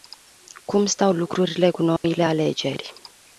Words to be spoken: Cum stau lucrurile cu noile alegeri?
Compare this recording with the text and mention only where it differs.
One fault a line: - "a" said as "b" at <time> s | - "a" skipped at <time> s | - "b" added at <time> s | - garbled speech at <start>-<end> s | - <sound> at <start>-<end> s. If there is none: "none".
- dropout at 2.0-2.0 s